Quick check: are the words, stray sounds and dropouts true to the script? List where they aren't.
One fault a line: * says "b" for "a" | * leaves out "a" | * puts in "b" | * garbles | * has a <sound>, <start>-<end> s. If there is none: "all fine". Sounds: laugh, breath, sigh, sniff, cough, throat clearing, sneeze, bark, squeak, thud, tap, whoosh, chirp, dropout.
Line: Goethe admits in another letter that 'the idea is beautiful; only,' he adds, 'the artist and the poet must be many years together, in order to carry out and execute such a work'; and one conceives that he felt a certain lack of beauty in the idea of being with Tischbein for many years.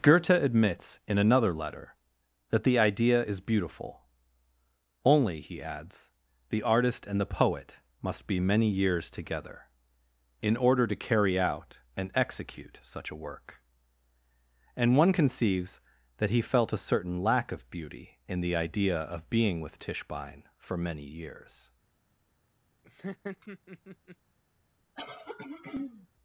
* has a laugh, 22.8-24.2 s
* has a throat clearing, 25.0-26.1 s